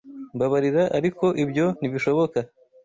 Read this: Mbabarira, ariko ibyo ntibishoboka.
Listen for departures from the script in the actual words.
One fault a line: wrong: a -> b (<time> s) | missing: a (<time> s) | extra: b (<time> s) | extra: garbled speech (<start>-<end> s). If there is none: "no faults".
no faults